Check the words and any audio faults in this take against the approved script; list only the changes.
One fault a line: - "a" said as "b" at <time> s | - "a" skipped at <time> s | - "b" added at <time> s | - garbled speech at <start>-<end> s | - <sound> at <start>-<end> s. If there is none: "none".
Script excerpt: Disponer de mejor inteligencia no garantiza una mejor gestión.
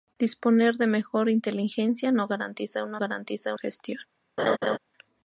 - "mejor" said as "garantiza" at 3.0 s
- laugh at 4.4-4.8 s